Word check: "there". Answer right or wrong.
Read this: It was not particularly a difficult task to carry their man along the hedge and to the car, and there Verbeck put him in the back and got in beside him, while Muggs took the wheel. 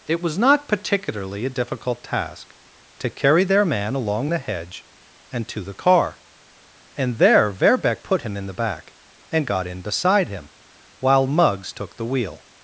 right